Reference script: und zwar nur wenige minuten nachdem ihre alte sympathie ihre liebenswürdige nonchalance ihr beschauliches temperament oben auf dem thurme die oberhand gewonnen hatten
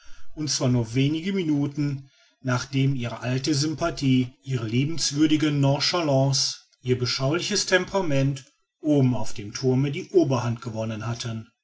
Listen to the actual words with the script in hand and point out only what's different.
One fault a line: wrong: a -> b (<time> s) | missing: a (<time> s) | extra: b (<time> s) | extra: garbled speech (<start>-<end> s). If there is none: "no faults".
no faults